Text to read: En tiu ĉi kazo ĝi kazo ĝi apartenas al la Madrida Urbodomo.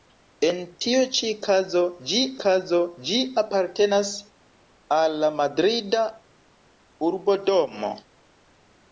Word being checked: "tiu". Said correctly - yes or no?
yes